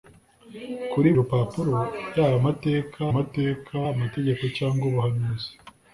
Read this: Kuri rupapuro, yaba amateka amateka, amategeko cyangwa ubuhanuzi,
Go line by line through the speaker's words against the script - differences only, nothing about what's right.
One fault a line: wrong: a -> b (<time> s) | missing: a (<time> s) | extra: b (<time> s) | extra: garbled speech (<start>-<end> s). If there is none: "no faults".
no faults